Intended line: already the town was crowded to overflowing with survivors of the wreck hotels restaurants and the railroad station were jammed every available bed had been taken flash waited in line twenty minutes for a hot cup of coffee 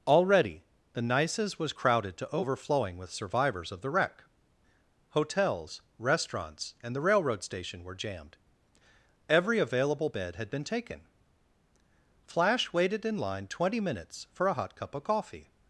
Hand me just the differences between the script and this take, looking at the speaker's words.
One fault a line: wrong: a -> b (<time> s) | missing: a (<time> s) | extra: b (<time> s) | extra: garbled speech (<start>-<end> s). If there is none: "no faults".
wrong: town -> nices (1.0 s)